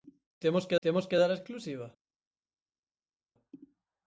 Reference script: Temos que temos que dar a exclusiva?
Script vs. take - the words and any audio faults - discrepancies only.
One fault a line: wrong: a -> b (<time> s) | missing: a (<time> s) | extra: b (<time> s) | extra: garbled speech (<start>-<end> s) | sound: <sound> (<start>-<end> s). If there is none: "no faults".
no faults